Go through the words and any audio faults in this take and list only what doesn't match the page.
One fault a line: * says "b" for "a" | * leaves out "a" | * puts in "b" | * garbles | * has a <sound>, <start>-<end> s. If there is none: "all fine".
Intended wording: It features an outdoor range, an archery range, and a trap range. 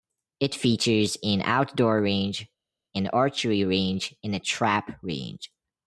all fine